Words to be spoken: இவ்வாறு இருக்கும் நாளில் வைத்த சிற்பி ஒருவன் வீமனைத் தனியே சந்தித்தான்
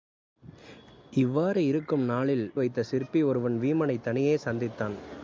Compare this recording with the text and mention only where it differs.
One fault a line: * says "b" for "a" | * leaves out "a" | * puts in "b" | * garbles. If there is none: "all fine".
all fine